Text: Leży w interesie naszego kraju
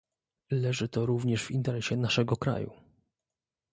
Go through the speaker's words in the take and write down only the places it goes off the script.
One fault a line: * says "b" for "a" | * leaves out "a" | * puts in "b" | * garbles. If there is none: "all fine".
* puts in "to również"